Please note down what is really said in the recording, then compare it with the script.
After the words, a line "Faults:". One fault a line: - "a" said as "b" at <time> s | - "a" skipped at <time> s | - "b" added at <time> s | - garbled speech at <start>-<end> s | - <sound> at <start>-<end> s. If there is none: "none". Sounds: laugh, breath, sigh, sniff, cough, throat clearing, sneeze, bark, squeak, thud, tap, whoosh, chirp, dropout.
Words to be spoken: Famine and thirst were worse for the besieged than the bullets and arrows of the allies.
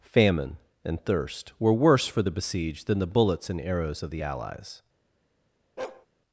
Famine and thirst were worse for the besieged than the bullets and arrows of the allies.
Faults:
- bark at 5.8-6.1 s